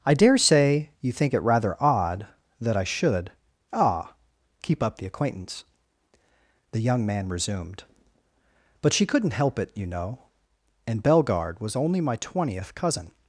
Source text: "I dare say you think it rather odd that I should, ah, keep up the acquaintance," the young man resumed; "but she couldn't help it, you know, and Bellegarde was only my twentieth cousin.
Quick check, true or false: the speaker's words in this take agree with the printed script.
true